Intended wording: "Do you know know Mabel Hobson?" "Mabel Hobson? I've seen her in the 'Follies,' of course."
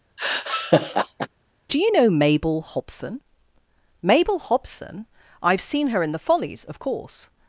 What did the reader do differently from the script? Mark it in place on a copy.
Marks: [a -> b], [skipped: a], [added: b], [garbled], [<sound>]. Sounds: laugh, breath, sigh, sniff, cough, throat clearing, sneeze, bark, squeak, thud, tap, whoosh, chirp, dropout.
[laugh] "Do you know [skipped: know] Mabel Hobson?" "Mabel Hobson? I've seen her in the 'Follies,' of course."